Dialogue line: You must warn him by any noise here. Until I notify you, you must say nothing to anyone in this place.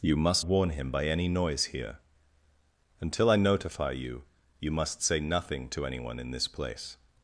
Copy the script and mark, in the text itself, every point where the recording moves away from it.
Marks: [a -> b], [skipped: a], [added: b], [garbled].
You must warn him by any noise here. Until I notify you, you must say nothing to anyone in this place.